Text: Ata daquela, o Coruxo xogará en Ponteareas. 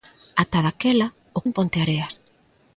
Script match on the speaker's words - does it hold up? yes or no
no